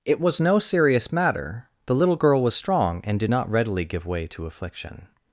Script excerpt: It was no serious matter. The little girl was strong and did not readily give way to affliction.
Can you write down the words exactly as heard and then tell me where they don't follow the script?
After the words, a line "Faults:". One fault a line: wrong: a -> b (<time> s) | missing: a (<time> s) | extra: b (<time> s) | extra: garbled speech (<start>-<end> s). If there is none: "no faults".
It was no serious matter. The little girl was strong and did not readily give way to affliction.
Faults:
no faults